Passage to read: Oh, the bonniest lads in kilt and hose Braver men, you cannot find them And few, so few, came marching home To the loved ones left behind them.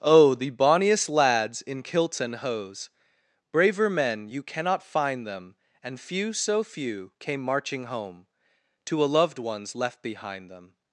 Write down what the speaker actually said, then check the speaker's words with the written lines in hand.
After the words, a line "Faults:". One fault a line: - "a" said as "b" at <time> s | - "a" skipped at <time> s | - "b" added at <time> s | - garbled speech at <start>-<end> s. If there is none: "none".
Oh, the bonniest lads in kilts and hose Braver men, you cannot find them And few, so few, came marching home To a loved ones left behind them.
Faults:
- "kilt" said as "kilts" at 1.8 s
- "the" said as "a" at 9.0 s